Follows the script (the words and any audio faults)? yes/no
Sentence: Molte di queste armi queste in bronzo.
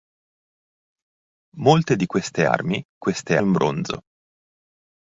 yes